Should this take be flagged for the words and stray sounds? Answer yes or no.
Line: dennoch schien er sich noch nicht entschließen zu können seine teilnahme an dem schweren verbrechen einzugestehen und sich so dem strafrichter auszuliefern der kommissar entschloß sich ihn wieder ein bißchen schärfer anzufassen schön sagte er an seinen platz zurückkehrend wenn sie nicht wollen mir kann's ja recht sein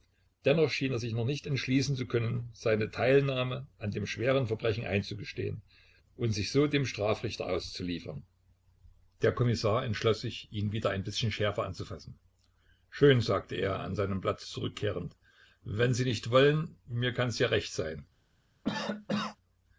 yes